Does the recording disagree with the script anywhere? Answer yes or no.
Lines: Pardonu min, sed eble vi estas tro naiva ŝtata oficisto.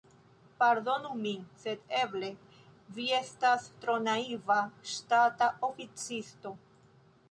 no